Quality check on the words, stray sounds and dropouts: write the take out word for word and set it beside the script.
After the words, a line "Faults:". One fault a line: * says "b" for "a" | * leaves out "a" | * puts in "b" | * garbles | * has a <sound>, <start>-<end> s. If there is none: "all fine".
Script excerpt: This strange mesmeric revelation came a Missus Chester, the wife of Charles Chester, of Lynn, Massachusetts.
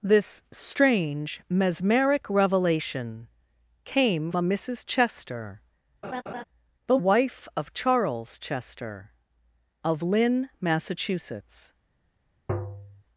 This strange mesmeric revelation came a Missus Chester, the wife of Charles Chester, of Lynn, Massachusetts.
Faults:
* has a laugh, 6.0-6.4 s
* has a tap, 12.5-13.0 s